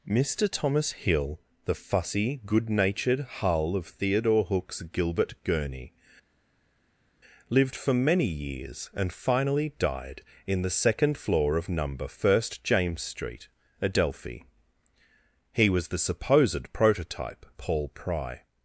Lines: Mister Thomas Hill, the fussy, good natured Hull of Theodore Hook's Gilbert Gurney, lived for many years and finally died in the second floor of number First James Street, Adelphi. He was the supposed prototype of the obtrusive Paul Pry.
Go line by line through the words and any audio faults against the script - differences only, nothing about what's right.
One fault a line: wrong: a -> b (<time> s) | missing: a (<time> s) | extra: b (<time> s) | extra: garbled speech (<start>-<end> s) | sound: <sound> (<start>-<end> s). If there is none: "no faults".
missing: of the obtrusive (17.5 s)